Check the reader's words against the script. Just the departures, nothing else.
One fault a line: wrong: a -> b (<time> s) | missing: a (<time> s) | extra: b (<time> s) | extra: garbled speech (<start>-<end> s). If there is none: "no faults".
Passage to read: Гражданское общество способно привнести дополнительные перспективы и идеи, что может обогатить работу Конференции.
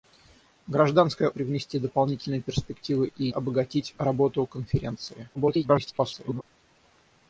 missing: общество способно (1.3 s)
missing: идеи что может (3.3 s)
extra: garbled speech (5.3-6.4 s)